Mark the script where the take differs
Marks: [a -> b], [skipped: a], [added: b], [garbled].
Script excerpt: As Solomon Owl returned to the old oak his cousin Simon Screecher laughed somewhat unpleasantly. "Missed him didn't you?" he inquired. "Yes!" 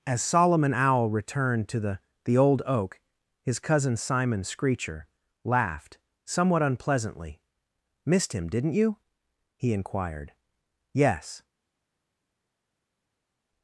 As Solomon Owl returned to the [added: the] old oak his cousin Simon Screecher laughed somewhat unpleasantly. "Missed him didn't you?" he inquired. "Yes!"